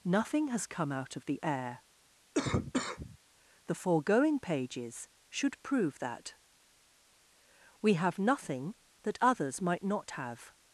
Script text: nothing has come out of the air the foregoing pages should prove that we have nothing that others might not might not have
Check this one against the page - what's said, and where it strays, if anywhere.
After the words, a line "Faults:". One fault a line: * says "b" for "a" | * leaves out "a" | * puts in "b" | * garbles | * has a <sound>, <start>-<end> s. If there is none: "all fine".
nothing has come out of the air the foregoing pages should prove that we have nothing that others might not have
Faults:
* has a cough, 2.3-3.2 s
* leaves out "might not"